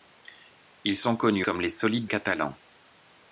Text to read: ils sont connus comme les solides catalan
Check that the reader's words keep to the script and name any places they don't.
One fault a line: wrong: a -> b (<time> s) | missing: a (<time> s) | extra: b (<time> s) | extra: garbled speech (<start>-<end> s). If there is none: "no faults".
no faults